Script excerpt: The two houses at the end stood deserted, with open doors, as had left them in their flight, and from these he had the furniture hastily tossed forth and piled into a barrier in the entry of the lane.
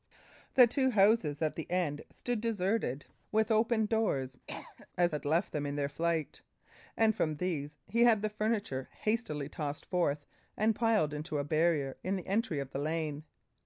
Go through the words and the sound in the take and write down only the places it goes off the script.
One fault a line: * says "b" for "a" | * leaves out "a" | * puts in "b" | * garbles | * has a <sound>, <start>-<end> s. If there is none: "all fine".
* has a cough, 4.5-4.9 s